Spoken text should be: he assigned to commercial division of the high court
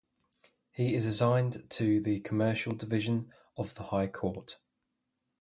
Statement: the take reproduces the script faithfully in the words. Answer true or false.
false